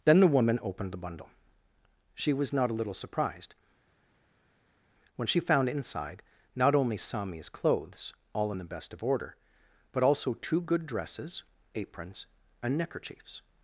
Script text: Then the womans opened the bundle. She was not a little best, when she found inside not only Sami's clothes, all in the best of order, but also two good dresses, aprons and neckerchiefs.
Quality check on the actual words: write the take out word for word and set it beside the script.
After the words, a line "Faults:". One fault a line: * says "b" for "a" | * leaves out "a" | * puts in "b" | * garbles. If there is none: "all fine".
Then the woman opened the bundle. She was not a little surprised, when she found inside not only Sami's clothes, all in the best of order, but also two good dresses, aprons and neckerchiefs.
Faults:
* says "woman" for "womans"
* says "surprised" for "best"